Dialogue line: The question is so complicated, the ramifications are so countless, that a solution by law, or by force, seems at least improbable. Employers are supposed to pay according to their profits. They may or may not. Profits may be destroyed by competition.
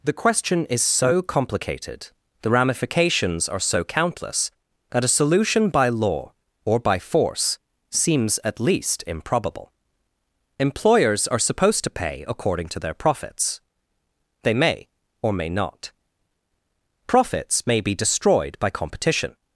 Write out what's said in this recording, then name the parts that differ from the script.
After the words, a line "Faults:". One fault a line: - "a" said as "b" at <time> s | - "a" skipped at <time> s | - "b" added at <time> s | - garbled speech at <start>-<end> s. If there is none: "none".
The question is so complicated, the ramifications are so countless, that a solution by law, or by force, seems at least improbable. Employers are supposed to pay according to their profits. They may or may not. Profits may be destroyed by competition.
Faults:
none